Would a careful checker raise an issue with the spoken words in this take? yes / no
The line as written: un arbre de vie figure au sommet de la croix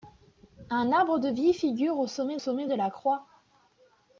yes